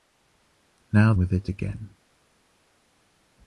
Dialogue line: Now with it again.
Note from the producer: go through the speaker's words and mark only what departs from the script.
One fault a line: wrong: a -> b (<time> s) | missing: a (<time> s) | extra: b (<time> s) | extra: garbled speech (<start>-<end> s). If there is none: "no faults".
no faults